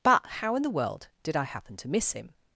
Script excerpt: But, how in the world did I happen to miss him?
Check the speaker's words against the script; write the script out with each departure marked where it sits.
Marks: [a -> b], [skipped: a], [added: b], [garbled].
But, how in the world did I happen to miss him?